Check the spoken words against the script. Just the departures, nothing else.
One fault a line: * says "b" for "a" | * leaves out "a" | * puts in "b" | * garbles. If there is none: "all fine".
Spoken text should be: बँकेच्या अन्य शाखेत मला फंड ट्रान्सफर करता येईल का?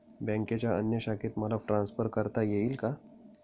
* leaves out "फंड"